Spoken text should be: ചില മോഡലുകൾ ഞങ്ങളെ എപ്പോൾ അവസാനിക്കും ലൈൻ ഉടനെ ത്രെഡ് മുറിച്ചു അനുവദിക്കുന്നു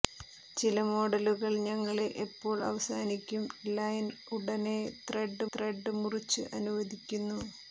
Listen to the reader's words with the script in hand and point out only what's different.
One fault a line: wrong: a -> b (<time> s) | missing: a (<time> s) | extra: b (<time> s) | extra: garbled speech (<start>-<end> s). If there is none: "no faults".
extra: ത്രെഡ് (5.5 s)